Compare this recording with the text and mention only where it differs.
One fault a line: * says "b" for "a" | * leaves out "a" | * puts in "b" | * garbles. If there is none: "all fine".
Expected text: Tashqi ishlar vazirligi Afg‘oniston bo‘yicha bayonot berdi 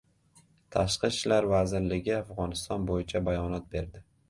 all fine